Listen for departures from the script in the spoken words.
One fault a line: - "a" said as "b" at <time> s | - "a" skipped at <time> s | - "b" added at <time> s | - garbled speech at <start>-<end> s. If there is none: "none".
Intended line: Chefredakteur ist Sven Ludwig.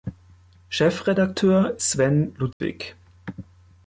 - "ist" skipped at 1.8 s